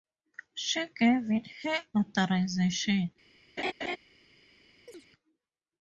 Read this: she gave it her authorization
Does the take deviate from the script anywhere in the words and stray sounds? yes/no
yes